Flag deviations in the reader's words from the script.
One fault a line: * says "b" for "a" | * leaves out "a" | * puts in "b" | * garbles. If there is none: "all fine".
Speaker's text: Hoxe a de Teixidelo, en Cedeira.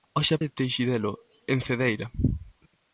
all fine